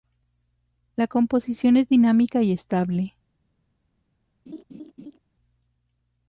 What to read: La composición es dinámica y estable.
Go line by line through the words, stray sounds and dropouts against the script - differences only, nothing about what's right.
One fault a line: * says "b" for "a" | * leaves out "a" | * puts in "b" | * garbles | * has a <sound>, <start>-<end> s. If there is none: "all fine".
* has a laugh, 4.5-5.2 s